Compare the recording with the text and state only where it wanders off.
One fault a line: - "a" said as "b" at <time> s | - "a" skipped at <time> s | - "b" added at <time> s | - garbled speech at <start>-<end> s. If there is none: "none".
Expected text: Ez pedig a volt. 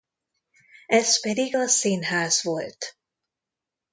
- "színház" added at 1.7 s